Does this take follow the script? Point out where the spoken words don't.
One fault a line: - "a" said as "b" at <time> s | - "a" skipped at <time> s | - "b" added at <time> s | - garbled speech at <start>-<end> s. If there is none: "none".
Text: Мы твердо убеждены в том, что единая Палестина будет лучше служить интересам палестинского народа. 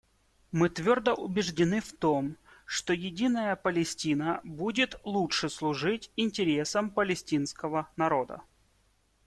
none